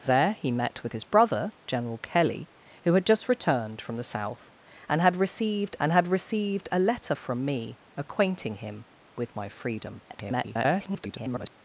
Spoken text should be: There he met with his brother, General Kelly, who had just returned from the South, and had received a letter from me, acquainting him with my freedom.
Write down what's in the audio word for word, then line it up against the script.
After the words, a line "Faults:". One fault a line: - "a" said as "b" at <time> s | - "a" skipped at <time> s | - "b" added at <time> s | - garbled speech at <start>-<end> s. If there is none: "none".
There he met with his brother, General Kelly, who had just returned from the South, and had received and had received a letter from me, acquainting him with my freedom. [garbled]
Faults:
- "and had received" added at 5.8 s
- garbled speech at 10.1-11.5 s